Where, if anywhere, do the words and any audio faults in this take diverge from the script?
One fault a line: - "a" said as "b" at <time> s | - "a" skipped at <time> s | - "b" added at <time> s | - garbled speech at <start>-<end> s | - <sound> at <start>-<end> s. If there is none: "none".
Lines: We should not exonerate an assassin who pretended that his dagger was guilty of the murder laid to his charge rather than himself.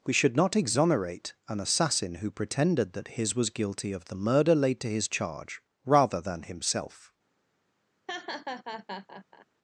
- "dagger" skipped at 3.4 s
- laugh at 8.1-9.5 s